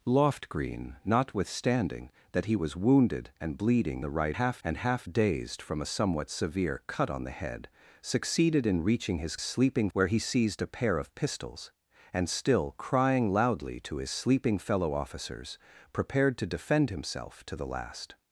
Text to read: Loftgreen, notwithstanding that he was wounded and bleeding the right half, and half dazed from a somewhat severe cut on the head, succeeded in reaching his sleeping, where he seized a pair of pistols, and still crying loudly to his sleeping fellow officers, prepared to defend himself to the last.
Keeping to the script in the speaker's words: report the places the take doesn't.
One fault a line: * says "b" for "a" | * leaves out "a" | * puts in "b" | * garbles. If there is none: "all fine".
all fine